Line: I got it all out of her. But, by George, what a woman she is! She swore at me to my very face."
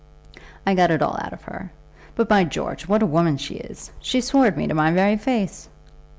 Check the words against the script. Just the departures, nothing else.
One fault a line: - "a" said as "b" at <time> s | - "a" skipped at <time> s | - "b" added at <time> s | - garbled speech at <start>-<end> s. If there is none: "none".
none